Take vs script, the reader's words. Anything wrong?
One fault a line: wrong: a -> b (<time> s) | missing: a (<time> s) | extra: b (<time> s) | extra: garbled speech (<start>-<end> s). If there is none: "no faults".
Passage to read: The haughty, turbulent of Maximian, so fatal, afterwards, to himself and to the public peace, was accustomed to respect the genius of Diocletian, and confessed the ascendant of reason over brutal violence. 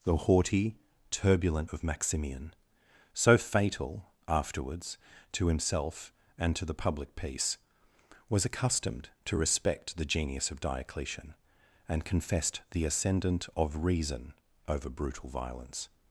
no faults